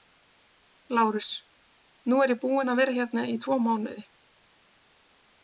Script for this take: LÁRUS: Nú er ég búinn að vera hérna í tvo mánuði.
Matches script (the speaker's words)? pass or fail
pass